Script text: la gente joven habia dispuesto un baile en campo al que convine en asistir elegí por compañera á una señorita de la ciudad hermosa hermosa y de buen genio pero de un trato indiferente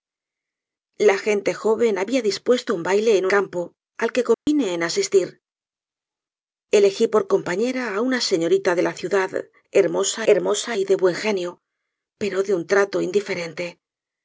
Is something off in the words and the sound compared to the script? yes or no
yes